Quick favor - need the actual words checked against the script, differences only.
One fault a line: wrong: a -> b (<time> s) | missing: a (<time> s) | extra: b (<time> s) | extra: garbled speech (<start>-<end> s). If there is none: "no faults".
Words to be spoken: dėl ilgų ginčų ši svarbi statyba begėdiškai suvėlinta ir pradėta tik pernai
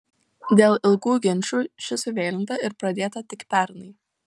missing: svarbi statyba begėdiškai (2.0 s)